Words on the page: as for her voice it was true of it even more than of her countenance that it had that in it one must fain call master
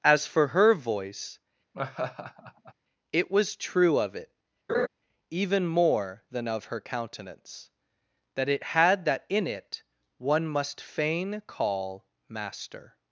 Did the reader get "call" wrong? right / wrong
right